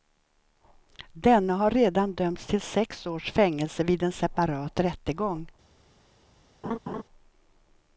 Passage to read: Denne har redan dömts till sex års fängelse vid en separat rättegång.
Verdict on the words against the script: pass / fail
pass